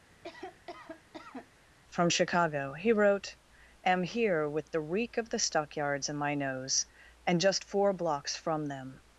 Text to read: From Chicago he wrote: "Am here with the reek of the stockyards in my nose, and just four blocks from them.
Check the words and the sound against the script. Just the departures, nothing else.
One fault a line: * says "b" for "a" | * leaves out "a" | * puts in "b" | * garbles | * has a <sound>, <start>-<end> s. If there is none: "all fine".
* has a cough, 0.1-1.6 s